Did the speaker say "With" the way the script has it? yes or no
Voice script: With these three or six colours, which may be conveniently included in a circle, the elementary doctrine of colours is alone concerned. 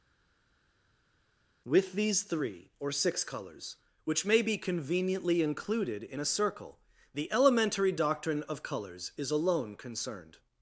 yes